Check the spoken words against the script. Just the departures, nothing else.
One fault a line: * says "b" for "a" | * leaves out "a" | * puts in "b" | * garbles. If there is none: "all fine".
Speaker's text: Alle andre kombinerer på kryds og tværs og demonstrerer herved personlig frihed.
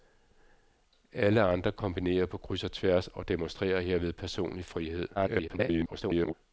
* garbles